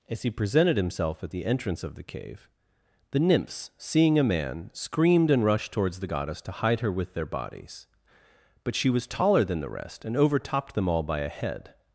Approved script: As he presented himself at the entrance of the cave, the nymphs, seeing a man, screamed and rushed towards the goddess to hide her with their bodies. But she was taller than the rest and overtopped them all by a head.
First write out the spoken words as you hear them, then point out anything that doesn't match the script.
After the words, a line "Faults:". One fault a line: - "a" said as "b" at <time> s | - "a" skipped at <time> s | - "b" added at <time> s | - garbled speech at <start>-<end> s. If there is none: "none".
As he presented himself at the entrance of the cave, the nymphs, seeing a man, screamed and rushed towards the goddess to hide her with their bodies. But she was taller than the rest and overtopped them all by a head.
Faults:
none